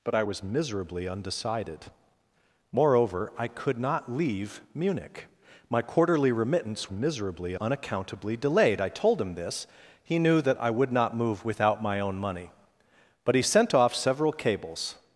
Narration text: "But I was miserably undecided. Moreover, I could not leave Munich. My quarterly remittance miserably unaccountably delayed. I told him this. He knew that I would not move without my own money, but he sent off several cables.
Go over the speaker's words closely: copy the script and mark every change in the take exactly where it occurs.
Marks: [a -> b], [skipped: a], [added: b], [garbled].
"But I was miserably undecided. Moreover, I could not leave Munich. My quarterly remittance miserably unaccountably delayed. I told him this. He knew that I would not move without my own money, but he sent off several cables.